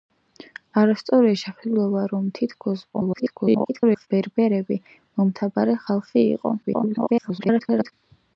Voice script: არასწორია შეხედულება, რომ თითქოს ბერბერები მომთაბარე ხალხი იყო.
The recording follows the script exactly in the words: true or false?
false